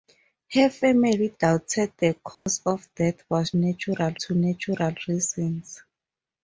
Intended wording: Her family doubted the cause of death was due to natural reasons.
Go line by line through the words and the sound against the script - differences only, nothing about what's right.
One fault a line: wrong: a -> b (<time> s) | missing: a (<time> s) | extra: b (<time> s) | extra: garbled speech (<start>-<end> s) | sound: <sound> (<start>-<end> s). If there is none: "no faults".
sound: dropout (2.3-2.5 s)
wrong: due -> natural (3.5 s)